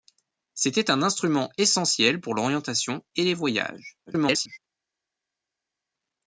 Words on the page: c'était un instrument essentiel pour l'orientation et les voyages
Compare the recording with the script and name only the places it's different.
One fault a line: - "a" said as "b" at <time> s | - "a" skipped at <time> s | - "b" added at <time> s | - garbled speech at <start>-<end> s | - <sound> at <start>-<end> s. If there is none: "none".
- garbled speech at 4.1-4.6 s